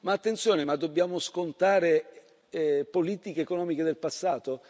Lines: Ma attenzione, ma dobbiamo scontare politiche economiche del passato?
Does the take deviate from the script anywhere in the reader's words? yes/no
no